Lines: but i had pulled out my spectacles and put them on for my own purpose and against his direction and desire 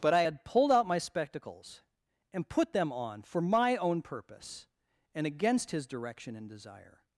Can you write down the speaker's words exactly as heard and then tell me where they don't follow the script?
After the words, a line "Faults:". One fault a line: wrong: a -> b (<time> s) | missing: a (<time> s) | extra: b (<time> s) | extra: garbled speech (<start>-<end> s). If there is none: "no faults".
but i had pulled out my spectacles and put them on for my own purpose and against his direction and desire
Faults:
no faults